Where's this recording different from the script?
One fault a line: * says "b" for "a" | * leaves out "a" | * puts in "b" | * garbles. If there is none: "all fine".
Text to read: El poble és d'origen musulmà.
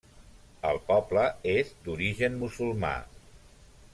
all fine